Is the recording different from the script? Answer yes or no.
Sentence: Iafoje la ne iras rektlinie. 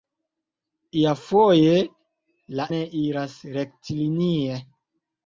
no